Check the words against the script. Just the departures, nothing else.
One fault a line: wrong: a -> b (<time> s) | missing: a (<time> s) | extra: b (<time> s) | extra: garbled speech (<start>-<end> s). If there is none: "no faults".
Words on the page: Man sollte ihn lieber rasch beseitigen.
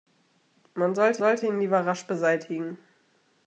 extra: sollte (1.2 s)